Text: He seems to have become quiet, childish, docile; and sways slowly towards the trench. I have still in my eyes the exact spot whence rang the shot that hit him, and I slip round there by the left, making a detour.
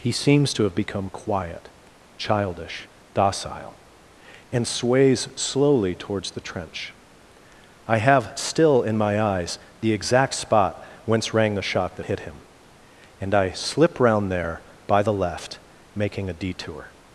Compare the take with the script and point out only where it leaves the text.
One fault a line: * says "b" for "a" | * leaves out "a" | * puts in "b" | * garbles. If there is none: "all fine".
all fine